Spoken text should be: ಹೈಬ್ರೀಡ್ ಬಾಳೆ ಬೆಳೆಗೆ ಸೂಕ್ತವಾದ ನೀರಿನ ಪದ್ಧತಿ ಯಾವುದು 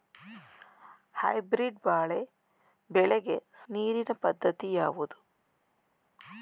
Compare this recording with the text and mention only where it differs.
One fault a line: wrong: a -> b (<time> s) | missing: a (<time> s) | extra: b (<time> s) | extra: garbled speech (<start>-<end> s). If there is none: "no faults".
missing: ಸೂಕ್ತವಾದ (3.4 s)